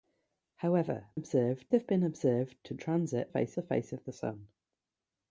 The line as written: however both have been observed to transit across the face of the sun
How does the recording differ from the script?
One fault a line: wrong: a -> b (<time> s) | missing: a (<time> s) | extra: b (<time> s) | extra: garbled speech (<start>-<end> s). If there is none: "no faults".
wrong: both -> observed (1.1 s)
wrong: across -> face (3.3 s)